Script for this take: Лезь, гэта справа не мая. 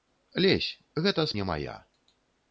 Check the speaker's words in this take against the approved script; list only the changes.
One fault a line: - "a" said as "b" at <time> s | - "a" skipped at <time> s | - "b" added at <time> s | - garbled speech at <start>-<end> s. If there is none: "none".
- "справа" skipped at 1.3 s